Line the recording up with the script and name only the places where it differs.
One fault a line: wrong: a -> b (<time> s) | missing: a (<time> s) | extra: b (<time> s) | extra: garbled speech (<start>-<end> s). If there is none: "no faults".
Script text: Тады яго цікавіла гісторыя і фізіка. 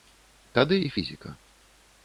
missing: яго цікавіла гісторыя (0.8 s)